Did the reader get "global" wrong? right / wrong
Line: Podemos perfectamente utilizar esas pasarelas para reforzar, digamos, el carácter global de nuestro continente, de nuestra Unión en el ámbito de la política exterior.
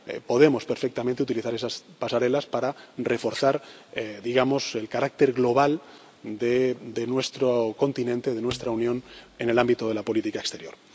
right